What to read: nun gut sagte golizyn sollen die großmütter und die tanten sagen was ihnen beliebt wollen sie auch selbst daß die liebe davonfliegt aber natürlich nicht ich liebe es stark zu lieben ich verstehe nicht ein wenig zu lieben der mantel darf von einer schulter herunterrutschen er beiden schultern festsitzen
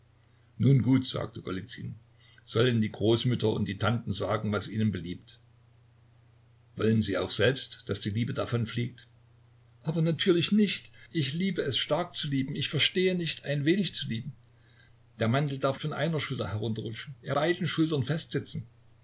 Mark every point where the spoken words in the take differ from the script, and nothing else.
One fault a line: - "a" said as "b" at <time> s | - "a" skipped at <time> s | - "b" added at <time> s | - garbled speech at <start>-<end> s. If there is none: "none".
none